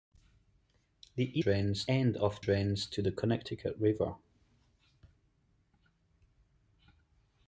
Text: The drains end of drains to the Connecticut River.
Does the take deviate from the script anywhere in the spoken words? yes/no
no